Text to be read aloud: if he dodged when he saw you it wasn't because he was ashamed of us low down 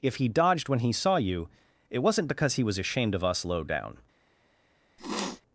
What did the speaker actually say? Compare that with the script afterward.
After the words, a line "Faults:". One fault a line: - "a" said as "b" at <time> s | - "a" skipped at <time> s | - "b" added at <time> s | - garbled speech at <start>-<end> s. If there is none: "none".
if he dodged when he saw you it wasn't because he was ashamed of us low down
Faults:
none